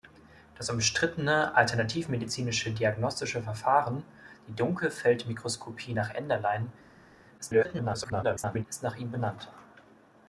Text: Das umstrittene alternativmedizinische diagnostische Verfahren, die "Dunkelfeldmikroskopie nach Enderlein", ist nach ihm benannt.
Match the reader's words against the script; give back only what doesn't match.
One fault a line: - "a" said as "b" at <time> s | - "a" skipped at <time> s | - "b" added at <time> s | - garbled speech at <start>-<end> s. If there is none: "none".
- garbled speech at 7.4-8.7 s